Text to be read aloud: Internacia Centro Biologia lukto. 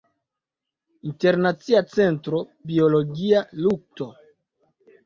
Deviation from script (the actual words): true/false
false